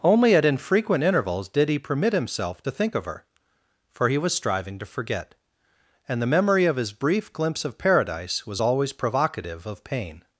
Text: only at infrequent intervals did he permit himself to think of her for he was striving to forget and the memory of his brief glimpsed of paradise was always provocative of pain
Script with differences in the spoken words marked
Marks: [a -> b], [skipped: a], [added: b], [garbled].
only at infrequent intervals did he permit himself to think of her for he was striving to forget and the memory of his brief [glimpsed -> glimpse] of paradise was always provocative of pain